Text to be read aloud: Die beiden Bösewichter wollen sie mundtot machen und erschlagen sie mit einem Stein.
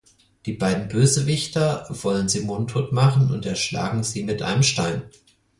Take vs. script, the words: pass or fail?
pass